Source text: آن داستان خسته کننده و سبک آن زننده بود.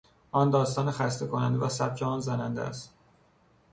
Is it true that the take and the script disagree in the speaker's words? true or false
true